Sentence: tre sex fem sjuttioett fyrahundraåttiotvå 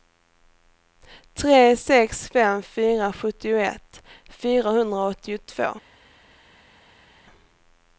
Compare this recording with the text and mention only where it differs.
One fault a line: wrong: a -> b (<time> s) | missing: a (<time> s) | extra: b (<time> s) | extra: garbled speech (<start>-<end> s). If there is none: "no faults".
extra: fyra (2.6 s)